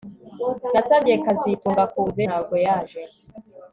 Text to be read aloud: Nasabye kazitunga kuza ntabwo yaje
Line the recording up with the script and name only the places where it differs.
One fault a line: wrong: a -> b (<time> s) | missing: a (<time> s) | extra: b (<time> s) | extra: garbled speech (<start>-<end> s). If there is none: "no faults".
no faults